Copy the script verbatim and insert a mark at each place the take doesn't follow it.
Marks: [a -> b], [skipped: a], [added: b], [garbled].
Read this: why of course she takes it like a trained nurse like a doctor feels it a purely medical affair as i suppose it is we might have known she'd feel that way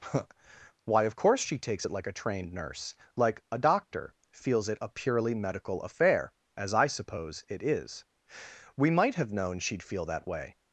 why of course she takes it like a trained nurse like a doctor feels it a purely medical affair as i suppose it is we might have known she'd feel that way